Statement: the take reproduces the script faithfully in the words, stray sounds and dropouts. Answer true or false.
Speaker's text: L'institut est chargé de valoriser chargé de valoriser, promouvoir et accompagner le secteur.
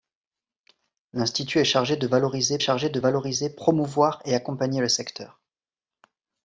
true